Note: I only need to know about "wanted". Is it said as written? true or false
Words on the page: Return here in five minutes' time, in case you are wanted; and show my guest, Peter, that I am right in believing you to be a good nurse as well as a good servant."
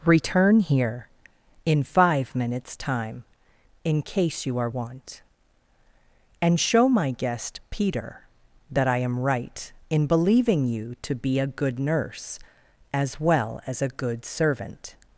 false